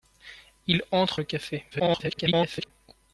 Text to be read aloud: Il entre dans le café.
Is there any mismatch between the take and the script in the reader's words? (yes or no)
yes